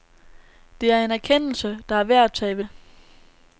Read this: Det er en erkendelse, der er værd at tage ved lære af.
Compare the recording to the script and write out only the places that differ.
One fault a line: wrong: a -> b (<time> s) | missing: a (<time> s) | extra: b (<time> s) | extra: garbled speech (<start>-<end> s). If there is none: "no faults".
missing: lære (2.6 s)